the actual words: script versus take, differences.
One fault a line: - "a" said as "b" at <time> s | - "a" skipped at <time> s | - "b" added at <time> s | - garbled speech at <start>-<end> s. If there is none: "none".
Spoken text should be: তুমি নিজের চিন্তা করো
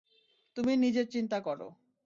none